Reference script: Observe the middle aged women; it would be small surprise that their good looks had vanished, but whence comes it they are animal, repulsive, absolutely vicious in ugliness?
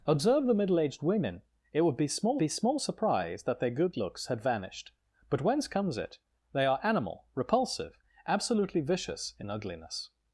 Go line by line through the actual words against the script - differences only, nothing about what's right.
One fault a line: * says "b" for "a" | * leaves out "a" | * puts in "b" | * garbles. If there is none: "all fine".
* puts in "be small"